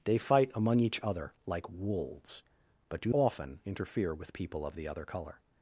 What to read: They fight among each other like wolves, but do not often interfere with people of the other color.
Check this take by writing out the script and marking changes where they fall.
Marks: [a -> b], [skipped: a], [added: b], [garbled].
They fight among each other like wolves, but do [skipped: not] often interfere with people of the other color.